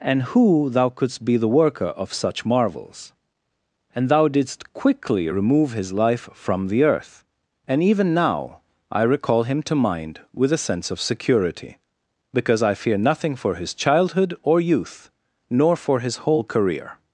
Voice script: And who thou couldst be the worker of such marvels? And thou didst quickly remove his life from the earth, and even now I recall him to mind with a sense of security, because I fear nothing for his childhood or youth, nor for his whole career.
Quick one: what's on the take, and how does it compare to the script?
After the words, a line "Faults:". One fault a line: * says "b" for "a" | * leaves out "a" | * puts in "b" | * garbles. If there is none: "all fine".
And who thou couldst be the worker of such marvels? And thou didst quickly remove his life from the earth, and even now I recall him to mind with a sense of security, because I fear nothing for his childhood or youth, nor for his whole career.
Faults:
all fine